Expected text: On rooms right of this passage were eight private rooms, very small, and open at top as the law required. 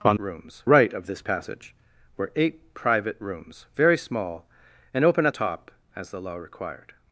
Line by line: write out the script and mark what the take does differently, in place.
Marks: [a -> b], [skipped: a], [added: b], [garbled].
On rooms right of this passage were eight private rooms, very small, and open at top as the law required.